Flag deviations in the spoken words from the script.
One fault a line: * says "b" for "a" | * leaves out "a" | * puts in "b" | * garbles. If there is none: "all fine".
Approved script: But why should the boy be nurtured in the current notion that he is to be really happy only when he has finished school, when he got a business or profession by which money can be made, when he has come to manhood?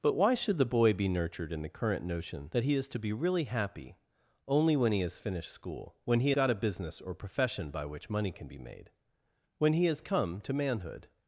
all fine